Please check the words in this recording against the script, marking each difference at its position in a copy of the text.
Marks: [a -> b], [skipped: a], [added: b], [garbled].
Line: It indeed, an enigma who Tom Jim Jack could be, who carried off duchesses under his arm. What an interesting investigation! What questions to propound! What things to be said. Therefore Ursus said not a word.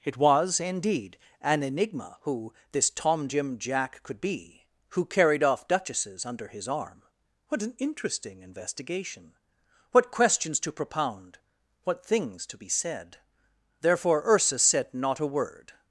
It [added: was] indeed, an enigma who [added: this] Tom Jim Jack could be, who carried off duchesses under his arm. What an interesting investigation! What questions to propound! What things to be said. Therefore Ursus said not a word.